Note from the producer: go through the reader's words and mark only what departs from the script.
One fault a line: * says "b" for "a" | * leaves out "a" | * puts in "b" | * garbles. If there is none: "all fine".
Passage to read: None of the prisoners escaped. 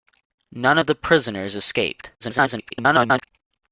* garbles